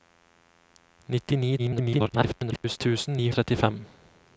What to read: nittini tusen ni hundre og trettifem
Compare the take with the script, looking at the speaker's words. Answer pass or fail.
fail